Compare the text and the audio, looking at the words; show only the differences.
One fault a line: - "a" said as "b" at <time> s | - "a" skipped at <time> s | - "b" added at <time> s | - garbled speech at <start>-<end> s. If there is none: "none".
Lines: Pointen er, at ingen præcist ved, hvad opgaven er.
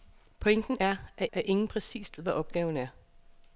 - "at" added at 1.3 s
- "ved" skipped at 2.2 s